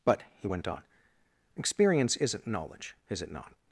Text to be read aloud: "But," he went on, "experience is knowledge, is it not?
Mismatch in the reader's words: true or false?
true